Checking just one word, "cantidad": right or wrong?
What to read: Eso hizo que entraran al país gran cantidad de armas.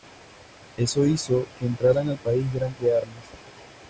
wrong